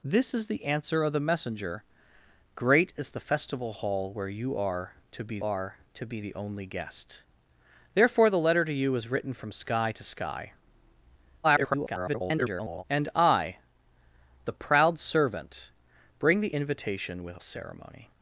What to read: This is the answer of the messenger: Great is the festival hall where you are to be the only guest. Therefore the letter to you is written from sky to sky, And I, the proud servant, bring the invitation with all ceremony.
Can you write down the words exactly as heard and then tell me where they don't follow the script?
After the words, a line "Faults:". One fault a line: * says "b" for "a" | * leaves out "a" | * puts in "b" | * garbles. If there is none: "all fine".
This is the answer of the messenger: Great is the festival hall where you are to be are to be the only guest. Therefore the letter to you is written from sky to sky, [garbled] And I, the proud servant, bring the invitation with ceremony.
Faults:
* puts in "are to be"
* garbles
* leaves out "all"